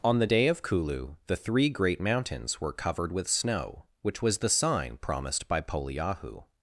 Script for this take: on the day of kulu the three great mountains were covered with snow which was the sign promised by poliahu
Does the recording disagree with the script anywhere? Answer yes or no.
no